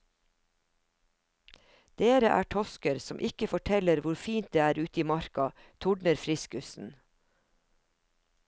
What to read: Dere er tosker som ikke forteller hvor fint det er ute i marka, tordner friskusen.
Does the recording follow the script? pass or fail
pass